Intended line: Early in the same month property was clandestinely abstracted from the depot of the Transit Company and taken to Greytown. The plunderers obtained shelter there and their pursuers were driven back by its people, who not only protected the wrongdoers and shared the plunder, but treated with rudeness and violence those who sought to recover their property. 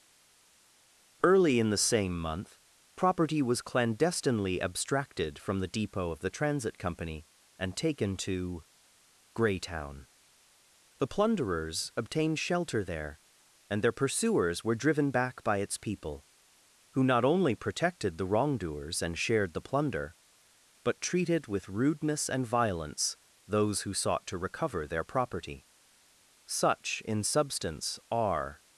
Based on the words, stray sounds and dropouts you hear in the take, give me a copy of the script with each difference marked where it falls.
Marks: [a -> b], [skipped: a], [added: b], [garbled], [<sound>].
Early in the same month property was clandestinely abstracted from the depot of the Transit Company and taken to Greytown. The plunderers obtained shelter there and their pursuers were driven back by its people, who not only protected the wrongdoers and shared the plunder, but treated with rudeness and violence those who sought to recover their property. [added: Such in substance are]